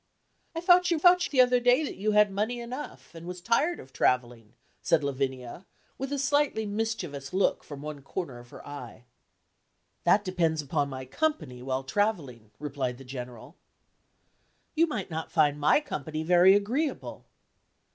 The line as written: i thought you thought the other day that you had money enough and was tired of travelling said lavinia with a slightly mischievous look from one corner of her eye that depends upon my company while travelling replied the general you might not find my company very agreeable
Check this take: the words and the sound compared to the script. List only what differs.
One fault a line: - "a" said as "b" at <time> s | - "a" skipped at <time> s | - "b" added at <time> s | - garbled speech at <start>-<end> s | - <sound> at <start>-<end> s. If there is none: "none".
none